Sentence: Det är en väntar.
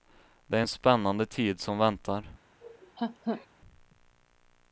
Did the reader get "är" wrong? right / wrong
right